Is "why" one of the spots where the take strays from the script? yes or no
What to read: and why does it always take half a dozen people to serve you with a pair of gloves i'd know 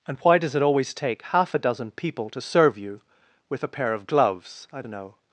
no